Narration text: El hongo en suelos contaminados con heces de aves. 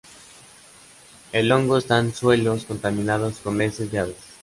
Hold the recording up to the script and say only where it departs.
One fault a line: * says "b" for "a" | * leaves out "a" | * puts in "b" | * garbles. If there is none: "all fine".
* puts in "está"